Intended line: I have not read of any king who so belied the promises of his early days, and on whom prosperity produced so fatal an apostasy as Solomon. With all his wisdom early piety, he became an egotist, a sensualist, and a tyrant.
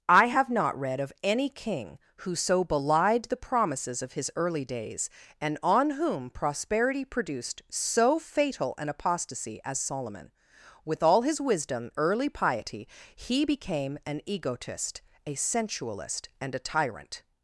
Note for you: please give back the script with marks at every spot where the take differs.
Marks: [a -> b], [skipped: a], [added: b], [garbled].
I have not read of any king who so belied the promises of his early days, and on whom prosperity produced so fatal an apostasy as Solomon. With all his wisdom early piety, he became an egotist, a sensualist, and a tyrant.